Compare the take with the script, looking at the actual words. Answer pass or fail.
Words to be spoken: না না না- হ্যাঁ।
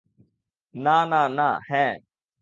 pass